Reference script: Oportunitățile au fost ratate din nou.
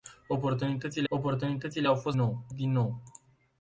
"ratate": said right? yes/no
no